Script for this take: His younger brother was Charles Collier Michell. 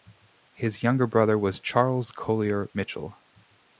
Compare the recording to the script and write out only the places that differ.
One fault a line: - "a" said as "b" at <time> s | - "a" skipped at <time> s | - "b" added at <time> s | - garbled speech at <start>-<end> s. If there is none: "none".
none